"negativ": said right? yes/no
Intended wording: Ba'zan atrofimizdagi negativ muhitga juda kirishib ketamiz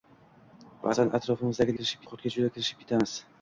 no